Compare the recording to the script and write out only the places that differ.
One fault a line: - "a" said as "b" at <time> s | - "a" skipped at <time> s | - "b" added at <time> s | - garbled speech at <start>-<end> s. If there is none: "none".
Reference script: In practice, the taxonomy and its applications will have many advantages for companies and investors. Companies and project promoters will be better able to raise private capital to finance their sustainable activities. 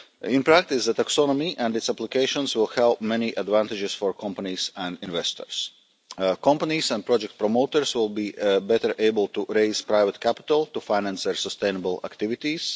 none